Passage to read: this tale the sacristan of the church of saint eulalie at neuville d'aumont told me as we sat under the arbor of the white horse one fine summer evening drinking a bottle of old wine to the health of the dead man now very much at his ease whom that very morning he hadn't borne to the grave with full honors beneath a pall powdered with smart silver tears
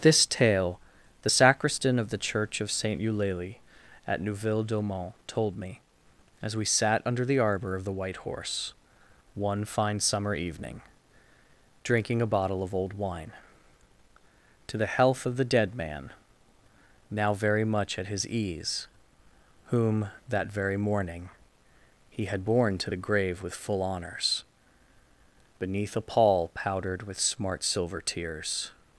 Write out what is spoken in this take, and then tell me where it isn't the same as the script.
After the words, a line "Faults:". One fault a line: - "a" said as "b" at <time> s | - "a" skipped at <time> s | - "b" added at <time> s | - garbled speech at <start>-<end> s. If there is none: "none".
this tale the sacristan of the church of saint eulalie at neuville d'aumont told me as we sat under the arbor of the white horse one fine summer evening drinking a bottle of old wine to the health of the dead man now very much at his ease whom that very morning he had borne to the grave with full honors beneath a pall powdered with smart silver tears
Faults:
- "hadn't" said as "had" at 22.2 s